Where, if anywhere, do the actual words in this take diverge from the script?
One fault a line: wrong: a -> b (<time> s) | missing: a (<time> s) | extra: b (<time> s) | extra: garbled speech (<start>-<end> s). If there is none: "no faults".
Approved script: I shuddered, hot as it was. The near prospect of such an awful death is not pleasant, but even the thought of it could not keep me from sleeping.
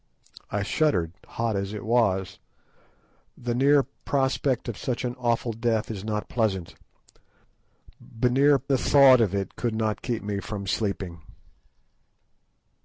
wrong: even -> near (8.3 s)